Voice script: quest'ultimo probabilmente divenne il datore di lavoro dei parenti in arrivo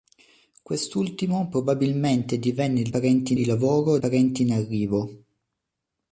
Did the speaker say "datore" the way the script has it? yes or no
no